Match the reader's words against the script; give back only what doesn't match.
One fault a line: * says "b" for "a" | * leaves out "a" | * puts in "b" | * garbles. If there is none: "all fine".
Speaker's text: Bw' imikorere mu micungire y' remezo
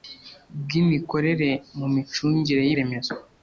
all fine